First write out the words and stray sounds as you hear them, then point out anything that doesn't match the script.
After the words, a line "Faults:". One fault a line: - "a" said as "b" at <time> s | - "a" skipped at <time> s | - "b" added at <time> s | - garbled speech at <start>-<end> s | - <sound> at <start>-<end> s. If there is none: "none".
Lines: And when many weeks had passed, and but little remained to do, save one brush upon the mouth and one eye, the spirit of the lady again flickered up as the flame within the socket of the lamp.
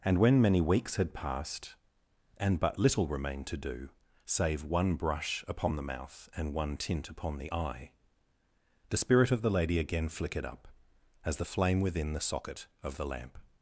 And when many weeks had passed, and but little remained to do, save one brush upon the mouth and one tint upon the eye, the spirit of the lady again flickered up as the flame within the socket of the lamp.
Faults:
- "tint upon the" added at 6.8 s